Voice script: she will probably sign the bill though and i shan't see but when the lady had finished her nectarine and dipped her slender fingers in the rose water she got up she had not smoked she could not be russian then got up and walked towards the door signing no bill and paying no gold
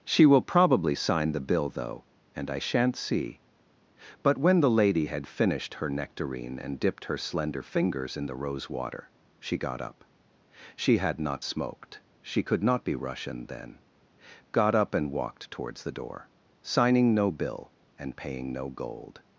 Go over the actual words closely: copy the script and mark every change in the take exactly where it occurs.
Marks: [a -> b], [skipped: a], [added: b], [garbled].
she will probably sign the bill though and i shan't see but when the lady had finished her nectarine and dipped her slender fingers in the rose water she got up she had not smoked she could not be russian then got up and walked towards the door signing no bill and paying no gold